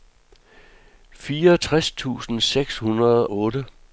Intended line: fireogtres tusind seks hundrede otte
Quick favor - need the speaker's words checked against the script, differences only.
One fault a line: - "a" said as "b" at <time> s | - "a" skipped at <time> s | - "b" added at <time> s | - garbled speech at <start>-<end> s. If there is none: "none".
none